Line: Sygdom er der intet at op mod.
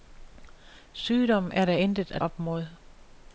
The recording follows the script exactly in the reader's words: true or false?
true